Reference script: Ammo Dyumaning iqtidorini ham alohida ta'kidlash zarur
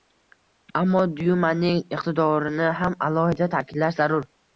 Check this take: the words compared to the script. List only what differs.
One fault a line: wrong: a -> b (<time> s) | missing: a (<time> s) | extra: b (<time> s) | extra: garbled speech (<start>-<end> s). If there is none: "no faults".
no faults